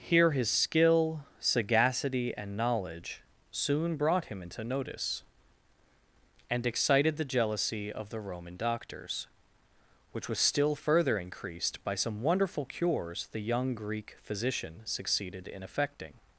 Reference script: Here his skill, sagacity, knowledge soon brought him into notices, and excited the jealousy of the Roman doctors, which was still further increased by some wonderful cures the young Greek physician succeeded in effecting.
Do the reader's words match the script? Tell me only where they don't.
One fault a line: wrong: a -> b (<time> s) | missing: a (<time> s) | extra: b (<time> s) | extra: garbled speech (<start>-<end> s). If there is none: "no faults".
extra: and (2.4 s)
wrong: notices -> notice (4.6 s)